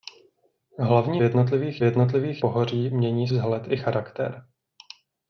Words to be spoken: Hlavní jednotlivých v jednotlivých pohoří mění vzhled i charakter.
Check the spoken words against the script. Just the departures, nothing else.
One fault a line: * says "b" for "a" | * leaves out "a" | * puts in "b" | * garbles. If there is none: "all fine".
all fine